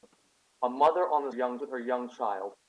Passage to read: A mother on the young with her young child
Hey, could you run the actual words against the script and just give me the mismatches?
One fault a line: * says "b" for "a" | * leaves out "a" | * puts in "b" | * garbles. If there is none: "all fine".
all fine